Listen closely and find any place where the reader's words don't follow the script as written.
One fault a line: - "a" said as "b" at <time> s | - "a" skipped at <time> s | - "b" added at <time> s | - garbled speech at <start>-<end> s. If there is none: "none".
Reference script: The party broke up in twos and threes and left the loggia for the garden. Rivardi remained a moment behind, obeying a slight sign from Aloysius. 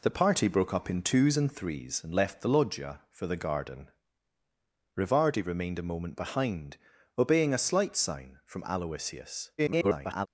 - garbled speech at 9.6-10.3 s